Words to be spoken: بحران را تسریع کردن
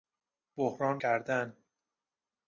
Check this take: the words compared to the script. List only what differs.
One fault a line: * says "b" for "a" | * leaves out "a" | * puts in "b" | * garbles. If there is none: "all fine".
* leaves out "را تسریع"